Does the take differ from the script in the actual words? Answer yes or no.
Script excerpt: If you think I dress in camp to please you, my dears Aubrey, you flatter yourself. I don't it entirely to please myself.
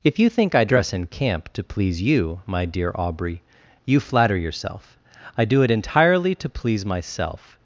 yes